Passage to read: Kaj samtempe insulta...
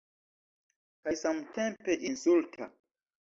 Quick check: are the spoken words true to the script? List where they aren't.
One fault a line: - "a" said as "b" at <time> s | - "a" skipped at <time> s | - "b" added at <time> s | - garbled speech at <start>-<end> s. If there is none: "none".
none